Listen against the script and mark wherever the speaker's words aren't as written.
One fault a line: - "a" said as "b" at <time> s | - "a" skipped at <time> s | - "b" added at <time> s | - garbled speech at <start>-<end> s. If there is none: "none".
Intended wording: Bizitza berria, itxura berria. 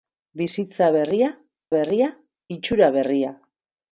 - "berria" added at 1.7 s